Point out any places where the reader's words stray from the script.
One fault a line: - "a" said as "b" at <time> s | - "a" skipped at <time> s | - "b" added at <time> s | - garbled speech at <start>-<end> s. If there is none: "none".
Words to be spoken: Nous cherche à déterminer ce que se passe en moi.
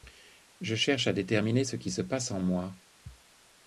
- "Nous" said as "Je" at 0.6 s
- "que" said as "qui" at 1.8 s